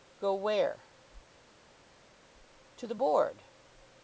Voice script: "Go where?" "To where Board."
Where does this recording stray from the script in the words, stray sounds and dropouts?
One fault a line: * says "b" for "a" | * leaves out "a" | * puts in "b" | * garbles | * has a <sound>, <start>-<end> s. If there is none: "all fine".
* says "the" for "where"